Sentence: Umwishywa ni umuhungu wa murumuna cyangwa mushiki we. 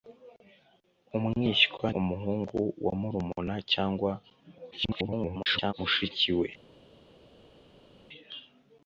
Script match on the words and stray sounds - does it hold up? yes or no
no